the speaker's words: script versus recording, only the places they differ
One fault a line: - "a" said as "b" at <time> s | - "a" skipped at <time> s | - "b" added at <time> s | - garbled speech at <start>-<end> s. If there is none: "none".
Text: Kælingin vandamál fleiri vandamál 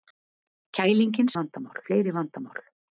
none